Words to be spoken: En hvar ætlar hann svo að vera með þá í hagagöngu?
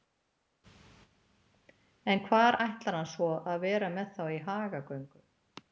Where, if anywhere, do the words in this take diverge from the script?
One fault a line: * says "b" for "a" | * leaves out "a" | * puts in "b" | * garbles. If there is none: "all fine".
all fine